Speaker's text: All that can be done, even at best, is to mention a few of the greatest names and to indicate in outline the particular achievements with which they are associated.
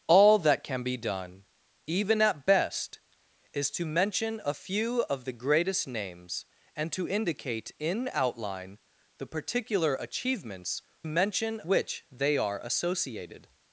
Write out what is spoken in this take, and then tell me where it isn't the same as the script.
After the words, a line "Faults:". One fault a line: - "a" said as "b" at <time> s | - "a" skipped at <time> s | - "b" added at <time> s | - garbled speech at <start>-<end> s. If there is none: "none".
All that can be done, even at best, is to mention a few of the greatest names and to indicate in outline the particular achievements mention which they are associated.
Faults:
- "with" said as "mention" at 11.1 s